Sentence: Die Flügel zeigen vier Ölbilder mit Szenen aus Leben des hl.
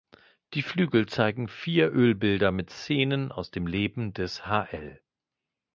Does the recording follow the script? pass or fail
fail